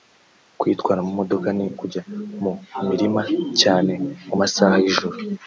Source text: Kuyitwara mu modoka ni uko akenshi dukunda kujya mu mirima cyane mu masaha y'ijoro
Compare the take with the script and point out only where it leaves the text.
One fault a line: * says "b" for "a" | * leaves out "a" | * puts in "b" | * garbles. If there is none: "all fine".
* leaves out "uko akenshi dukunda"